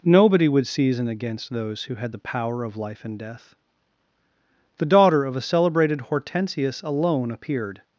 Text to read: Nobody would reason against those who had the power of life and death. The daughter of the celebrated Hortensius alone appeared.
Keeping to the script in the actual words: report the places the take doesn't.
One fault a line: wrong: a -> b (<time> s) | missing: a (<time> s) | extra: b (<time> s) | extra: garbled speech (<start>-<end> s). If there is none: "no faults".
wrong: reason -> season (0.7 s)
wrong: the -> a (5.4 s)